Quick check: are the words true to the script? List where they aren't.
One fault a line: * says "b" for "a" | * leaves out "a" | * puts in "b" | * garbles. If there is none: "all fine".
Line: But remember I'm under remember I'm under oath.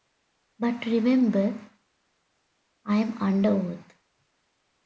* leaves out "remember I'm under"